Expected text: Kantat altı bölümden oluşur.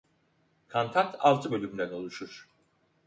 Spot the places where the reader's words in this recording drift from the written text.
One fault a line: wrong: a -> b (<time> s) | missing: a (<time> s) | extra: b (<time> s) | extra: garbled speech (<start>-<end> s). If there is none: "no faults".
no faults